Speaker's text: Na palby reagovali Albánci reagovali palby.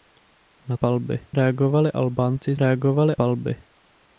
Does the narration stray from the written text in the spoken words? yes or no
no